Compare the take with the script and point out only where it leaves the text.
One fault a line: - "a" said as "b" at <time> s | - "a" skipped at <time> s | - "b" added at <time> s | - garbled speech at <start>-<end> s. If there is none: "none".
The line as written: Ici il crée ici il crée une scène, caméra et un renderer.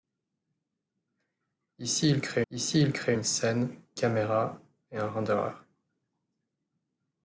none